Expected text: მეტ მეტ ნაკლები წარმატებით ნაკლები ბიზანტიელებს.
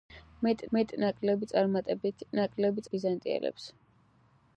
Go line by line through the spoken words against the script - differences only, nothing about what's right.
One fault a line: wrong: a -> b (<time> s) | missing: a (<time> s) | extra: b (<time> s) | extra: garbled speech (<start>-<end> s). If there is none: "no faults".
no faults